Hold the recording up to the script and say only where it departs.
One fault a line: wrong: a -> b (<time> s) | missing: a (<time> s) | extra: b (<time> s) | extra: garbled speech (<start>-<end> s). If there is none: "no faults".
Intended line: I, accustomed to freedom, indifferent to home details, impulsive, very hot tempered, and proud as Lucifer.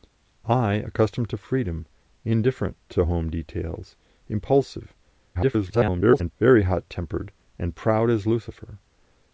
extra: garbled speech (5.3-6.3 s)